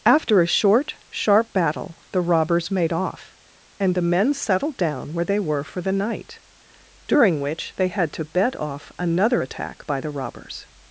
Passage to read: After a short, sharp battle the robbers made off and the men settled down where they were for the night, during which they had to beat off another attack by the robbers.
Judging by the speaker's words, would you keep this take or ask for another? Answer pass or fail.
fail